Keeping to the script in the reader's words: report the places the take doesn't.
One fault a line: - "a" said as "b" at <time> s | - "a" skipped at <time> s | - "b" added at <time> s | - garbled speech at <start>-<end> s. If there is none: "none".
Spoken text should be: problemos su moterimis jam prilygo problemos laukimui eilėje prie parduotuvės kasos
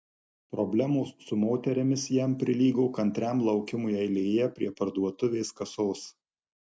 - "problemos" said as "kantriam" at 3.0 s